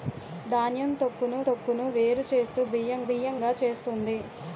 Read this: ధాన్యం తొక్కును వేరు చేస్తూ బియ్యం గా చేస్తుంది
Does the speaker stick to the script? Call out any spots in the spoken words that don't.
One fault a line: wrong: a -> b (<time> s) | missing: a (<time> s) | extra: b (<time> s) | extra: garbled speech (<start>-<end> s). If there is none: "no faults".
extra: తొక్కును (1.4 s)
extra: బియ్యం (3.0 s)